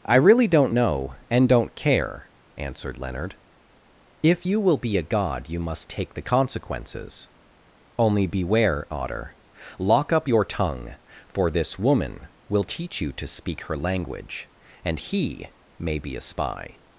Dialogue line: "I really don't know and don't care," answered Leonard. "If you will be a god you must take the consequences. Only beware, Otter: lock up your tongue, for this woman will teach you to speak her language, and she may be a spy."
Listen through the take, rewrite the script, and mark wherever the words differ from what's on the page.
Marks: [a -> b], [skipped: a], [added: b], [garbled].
"I really don't know and don't care," answered Leonard. "If you will be a god you must take the consequences. Only beware, Otter: lock up your tongue, for this woman will teach you to speak her language, and [she -> he] may be a spy."